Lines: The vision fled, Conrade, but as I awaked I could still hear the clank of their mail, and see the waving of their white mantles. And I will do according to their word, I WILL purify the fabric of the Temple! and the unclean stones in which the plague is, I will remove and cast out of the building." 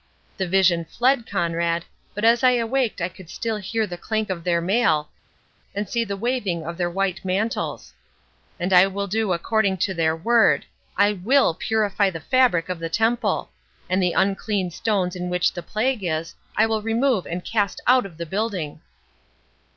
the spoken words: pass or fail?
pass